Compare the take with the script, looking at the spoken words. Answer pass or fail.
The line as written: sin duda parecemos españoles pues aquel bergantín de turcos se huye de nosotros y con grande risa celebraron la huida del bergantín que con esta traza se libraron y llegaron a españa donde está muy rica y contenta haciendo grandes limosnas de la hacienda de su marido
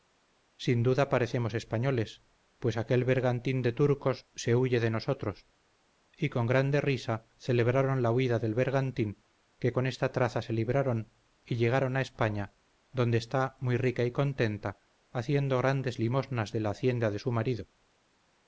pass